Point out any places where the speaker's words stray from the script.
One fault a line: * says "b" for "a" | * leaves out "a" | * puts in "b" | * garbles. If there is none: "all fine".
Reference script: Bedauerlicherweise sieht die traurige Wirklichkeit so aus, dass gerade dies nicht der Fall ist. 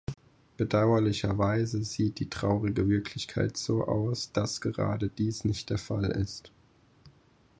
all fine